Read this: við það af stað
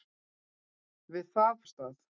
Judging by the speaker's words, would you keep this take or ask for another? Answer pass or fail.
pass